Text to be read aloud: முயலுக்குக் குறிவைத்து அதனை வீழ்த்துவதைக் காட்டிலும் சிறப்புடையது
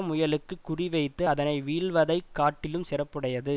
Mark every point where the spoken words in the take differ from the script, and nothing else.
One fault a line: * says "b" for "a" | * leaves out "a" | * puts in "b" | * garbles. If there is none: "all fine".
all fine